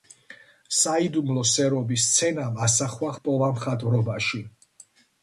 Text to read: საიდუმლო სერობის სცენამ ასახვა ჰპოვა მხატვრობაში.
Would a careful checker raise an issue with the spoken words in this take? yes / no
no